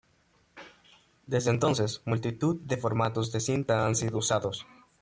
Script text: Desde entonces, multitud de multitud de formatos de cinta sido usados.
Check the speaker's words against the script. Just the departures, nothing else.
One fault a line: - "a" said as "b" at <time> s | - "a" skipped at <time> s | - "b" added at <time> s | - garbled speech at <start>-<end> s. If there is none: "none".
- "multitud de" skipped at 2.8 s
- "han" added at 3.8 s